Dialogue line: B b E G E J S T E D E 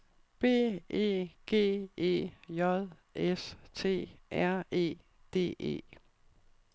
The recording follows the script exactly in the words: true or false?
false